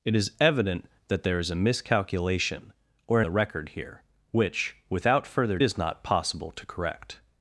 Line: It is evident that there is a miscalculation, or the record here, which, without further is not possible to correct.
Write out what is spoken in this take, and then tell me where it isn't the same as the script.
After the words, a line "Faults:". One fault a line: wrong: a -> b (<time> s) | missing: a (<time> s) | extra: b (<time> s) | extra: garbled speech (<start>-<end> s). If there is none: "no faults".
It is evident that there is a miscalculation, or the record here, which, without further is not possible to correct.
Faults:
no faults